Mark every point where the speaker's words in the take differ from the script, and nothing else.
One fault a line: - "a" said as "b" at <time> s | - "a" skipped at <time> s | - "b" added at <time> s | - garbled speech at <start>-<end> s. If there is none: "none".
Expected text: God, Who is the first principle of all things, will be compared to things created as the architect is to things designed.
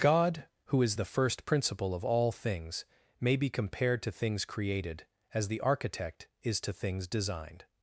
- "will" said as "may" at 3.2 s